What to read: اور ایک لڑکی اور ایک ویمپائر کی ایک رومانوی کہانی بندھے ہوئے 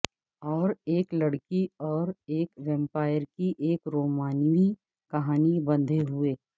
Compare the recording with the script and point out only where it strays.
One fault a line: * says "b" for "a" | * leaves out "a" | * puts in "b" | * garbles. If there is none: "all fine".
all fine